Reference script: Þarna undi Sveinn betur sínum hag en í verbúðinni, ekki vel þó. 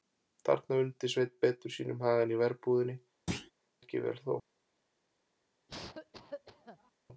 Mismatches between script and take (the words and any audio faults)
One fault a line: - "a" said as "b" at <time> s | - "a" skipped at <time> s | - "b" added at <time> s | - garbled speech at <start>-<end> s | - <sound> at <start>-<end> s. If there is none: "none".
- thud at 3.3-3.5 s
- cough at 5.7-6.9 s